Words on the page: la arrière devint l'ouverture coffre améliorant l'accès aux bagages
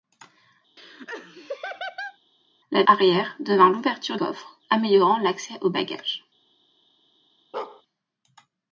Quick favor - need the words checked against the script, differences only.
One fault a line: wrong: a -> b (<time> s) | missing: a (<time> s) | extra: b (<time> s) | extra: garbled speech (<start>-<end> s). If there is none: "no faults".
no faults